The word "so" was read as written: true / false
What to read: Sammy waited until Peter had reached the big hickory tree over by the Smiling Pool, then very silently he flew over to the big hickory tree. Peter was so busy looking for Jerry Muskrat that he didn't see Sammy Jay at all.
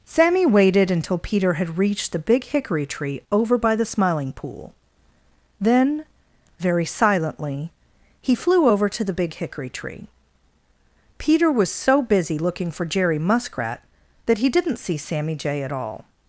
true